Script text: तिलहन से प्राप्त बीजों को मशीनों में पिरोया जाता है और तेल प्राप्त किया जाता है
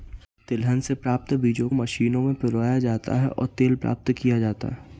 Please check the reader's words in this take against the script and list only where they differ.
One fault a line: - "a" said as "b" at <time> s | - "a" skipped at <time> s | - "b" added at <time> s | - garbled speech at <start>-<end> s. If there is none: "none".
- "को" skipped at 1.7 s